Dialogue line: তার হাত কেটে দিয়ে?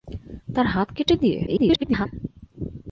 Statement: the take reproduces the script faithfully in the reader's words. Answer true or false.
false